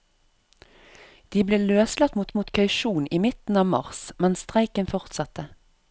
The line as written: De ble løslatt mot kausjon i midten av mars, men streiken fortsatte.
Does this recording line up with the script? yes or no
no